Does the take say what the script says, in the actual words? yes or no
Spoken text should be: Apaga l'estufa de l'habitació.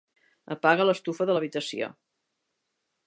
yes